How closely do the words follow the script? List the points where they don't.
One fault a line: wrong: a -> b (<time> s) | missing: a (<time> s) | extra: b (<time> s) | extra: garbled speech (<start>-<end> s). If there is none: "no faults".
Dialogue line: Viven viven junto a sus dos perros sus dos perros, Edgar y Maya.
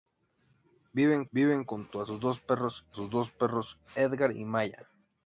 no faults